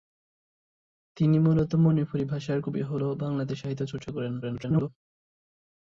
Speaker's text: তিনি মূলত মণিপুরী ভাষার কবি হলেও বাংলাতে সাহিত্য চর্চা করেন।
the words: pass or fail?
fail